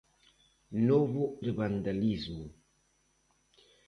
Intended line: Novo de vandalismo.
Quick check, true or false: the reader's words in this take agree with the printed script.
true